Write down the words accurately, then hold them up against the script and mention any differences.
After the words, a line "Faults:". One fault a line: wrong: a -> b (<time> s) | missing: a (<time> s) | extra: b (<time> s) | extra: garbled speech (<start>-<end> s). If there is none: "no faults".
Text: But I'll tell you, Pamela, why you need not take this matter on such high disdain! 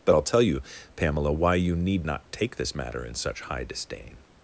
But I'll tell you, Pamela, why you need not take this matter in such high disdain!
Faults:
wrong: on -> in (3.0 s)